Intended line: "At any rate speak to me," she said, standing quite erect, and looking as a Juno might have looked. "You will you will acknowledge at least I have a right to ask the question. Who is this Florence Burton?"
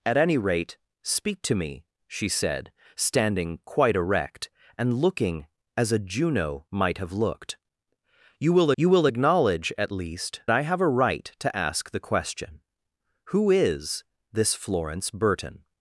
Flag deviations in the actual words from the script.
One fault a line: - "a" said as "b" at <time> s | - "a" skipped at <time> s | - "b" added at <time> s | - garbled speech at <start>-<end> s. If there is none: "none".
none